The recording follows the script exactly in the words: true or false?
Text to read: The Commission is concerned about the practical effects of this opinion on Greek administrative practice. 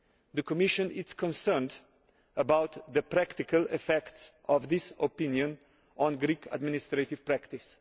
true